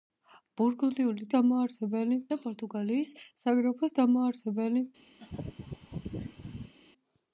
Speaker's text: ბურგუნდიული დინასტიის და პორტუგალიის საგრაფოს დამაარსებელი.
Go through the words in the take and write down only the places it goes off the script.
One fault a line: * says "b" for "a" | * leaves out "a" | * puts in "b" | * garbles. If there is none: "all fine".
* says "დამაარსებელი" for "დინასტიის"